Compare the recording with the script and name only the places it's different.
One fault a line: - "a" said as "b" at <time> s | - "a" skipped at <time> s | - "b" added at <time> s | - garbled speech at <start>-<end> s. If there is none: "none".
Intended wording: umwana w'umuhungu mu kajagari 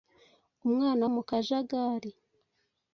- "w'umuhungu" skipped at 1.0 s